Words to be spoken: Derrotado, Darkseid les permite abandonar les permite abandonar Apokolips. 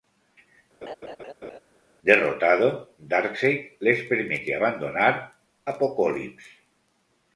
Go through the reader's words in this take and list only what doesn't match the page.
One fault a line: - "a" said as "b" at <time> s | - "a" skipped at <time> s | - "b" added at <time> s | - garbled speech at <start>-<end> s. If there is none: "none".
- "les permite abandonar" skipped at 5.1 s